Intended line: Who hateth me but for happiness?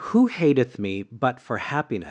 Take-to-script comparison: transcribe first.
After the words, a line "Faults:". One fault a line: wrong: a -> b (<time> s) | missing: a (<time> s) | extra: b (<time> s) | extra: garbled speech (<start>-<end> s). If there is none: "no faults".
Who hateth me but for happiness?
Faults:
no faults